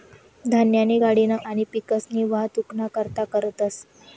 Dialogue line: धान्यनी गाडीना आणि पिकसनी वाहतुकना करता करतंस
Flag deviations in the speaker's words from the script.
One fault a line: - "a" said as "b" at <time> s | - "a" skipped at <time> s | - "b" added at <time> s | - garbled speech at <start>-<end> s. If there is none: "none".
none